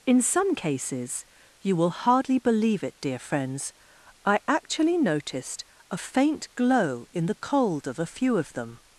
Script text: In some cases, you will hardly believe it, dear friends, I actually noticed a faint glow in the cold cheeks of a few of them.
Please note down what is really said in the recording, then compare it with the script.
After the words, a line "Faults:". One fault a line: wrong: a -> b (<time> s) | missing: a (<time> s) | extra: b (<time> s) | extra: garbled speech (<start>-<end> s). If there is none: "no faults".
In some cases, you will hardly believe it, dear friends, I actually noticed a faint glow in the cold of a few of them.
Faults:
missing: cheeks (7.9 s)